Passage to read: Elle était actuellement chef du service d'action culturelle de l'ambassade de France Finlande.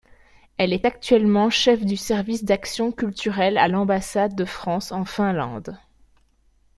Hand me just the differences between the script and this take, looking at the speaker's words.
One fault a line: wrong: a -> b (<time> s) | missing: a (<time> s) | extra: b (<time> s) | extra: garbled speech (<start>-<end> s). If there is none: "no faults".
wrong: était -> est (0.7 s)
wrong: de -> à (3.6 s)
extra: en (4.9 s)